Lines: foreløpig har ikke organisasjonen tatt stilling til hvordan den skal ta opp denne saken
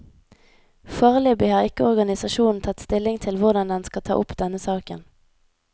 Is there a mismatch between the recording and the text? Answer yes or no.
no